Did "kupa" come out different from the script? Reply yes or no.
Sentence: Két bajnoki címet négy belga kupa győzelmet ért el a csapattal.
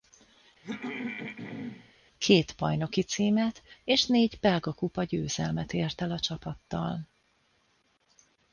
no